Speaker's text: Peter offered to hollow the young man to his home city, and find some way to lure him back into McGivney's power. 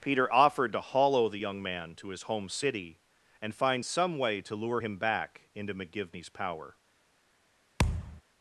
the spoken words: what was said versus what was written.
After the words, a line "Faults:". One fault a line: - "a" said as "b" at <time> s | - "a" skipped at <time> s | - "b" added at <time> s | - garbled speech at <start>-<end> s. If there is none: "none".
Peter offered to hollow the young man to his home city, and find some way to lure him back into McGivney's power.
Faults:
none